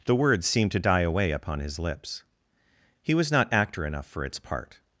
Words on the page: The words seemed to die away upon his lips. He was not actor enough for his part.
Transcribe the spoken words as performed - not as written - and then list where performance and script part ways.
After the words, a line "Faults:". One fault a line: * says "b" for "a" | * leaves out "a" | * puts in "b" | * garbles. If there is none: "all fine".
The words seemed to die away upon his lips. He was not actor enough for its part.
Faults:
* says "its" for "his"